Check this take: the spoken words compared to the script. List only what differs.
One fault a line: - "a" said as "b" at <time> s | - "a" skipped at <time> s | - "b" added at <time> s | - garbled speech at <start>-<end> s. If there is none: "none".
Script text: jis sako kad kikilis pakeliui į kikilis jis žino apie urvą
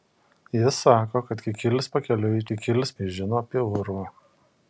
none